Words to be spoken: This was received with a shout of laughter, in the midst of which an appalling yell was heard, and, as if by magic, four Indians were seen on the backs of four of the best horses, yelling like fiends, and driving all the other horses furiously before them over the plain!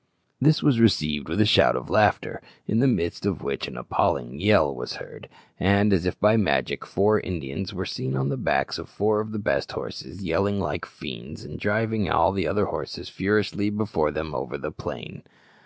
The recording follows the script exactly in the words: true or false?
true